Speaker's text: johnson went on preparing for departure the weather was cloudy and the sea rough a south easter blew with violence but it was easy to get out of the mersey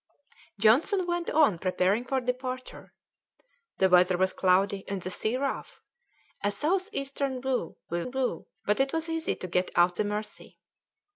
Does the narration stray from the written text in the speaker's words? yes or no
yes